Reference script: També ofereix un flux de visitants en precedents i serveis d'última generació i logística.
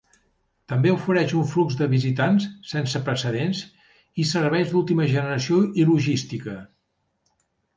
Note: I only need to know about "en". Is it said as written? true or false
false